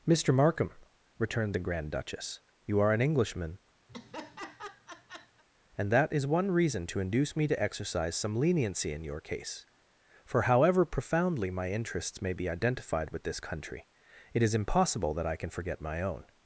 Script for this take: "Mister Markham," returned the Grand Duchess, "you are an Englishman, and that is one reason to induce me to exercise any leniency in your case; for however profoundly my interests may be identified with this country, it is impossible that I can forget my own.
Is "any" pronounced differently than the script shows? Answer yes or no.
yes